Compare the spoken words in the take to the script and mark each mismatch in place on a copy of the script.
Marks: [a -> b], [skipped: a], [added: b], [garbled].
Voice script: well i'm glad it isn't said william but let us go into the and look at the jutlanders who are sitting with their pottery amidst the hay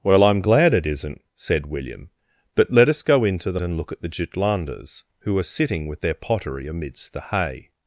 well i'm glad it isn't said william but let us go into the and look at the jutlanders who are sitting with their pottery amidst the hay